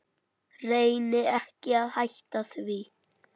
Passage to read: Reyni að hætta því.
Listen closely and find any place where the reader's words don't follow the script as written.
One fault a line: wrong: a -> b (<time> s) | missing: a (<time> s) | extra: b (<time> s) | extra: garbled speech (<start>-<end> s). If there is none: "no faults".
extra: ekki (1.4 s)